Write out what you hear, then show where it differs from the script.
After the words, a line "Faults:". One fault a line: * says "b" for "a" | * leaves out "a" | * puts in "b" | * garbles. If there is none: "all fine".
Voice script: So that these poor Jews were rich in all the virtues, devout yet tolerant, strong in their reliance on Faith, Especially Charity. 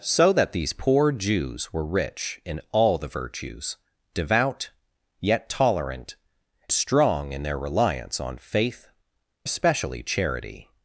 So that these poor Jews were rich in all the virtues, devout yet tolerant, strong in their reliance on Faith, Especially Charity.
Faults:
all fine